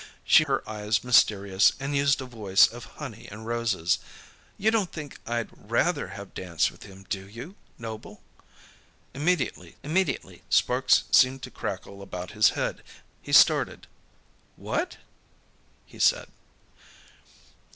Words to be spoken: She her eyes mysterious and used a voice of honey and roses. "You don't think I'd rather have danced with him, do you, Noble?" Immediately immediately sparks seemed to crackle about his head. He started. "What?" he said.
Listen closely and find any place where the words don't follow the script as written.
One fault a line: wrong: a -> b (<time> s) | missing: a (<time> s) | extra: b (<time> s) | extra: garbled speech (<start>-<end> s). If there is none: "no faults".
no faults